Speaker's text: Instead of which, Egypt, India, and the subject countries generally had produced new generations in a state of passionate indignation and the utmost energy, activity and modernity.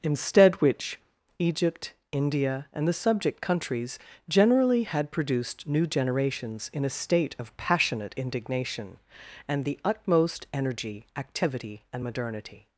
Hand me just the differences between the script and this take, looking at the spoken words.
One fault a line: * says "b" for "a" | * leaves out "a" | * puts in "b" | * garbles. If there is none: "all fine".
* leaves out "of"